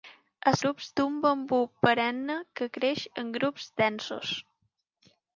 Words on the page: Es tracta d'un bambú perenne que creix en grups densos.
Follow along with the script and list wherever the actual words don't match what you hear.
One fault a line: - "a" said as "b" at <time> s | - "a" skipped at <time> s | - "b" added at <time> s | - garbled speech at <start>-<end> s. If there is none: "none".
- "tracta" said as "grups" at 0.6 s